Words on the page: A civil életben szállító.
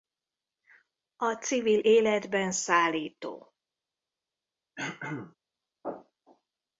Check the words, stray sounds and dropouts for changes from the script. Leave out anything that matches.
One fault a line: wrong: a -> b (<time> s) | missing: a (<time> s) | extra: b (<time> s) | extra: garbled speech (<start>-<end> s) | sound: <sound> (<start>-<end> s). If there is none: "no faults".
sound: throat clearing (4.8-5.4 s)